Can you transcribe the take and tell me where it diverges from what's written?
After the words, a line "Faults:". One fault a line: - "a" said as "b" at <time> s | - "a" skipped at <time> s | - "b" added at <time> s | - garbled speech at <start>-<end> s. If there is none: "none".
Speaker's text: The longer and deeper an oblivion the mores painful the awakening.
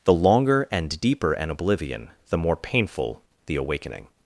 The longer and deeper an oblivion the more painful the awakening.
Faults:
- "mores" said as "more" at 2.4 s